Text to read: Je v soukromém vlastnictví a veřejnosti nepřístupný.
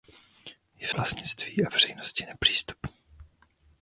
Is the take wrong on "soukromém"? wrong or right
wrong